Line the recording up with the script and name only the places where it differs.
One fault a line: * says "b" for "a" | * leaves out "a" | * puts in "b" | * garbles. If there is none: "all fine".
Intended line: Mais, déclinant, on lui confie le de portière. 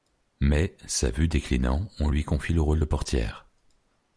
* puts in "sa vue"
* puts in "rôle"